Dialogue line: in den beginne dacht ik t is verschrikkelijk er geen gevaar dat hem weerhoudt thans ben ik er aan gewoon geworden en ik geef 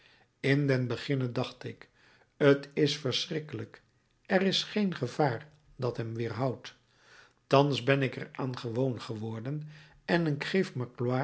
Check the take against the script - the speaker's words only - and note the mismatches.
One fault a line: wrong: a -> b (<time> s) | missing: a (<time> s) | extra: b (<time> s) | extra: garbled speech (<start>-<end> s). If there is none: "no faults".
extra: is (4.4 s)